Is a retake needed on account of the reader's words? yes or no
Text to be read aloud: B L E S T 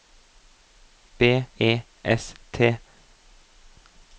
yes